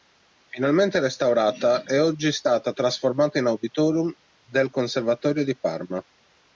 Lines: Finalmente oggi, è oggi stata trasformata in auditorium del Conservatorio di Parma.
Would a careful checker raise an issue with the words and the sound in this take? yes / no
yes